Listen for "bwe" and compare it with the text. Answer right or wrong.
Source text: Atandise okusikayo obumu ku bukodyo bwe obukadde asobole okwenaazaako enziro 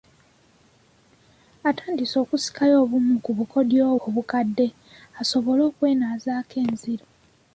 wrong